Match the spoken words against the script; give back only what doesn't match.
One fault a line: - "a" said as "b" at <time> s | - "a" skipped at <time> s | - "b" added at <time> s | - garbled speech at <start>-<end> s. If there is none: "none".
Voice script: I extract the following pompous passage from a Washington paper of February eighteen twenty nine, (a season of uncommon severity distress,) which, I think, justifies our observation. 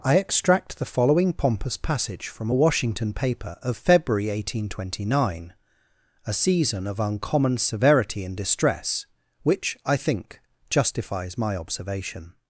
- "and" added at 8.2 s
- "our" said as "my" at 11.4 s